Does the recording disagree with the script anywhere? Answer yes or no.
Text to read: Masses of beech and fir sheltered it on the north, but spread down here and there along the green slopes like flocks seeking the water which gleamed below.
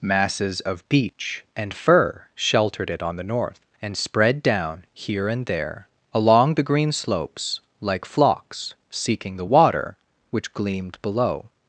yes